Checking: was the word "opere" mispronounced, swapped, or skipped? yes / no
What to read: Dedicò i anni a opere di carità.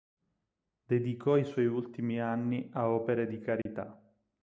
no